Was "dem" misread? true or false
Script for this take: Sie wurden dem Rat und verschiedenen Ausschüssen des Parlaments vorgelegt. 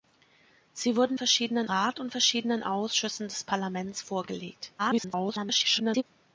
true